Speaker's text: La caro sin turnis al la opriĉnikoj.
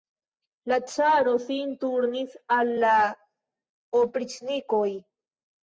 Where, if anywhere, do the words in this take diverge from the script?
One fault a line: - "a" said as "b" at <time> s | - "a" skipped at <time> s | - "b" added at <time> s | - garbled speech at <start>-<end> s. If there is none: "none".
none